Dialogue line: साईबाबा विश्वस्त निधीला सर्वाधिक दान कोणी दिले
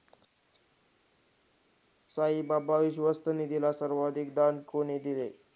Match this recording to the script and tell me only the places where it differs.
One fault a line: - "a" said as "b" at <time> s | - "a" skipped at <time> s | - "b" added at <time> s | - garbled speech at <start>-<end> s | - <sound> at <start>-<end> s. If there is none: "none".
none